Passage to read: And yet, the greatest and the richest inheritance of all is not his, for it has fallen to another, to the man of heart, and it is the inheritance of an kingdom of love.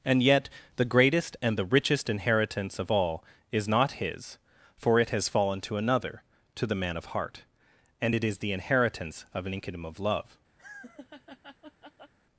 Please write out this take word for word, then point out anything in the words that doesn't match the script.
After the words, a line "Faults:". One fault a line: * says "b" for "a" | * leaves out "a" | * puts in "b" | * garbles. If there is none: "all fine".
And yet, the greatest and the richest inheritance of all is not his, for it has fallen to another, to the man of heart, and it is the inheritance of an kingdom of love.
Faults:
all fine